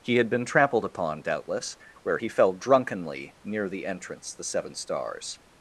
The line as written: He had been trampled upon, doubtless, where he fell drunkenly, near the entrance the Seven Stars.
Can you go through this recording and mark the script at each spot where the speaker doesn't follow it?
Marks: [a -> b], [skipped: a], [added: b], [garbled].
He had been trampled upon, doubtless, where he fell drunkenly, near the entrance the Seven Stars.